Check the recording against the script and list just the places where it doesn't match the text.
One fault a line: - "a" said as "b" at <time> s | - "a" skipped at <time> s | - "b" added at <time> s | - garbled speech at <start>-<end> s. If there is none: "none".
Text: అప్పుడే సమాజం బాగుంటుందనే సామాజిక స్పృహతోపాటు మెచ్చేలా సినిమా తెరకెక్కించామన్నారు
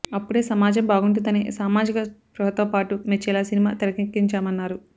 none